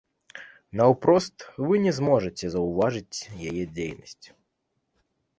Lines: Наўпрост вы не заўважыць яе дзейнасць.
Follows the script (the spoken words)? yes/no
no